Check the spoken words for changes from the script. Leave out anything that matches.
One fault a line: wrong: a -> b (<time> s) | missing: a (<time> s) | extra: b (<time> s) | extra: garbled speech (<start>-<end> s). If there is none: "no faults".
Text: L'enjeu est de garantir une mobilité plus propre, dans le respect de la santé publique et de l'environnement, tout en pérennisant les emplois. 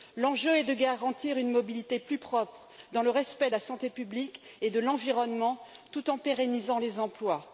no faults